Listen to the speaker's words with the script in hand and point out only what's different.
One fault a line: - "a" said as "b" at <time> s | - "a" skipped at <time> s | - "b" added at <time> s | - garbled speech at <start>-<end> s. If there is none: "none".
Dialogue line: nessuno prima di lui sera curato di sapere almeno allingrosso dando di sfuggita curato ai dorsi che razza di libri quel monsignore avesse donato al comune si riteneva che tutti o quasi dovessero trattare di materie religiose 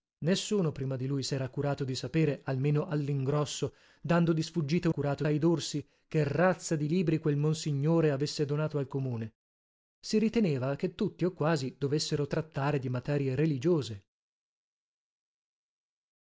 none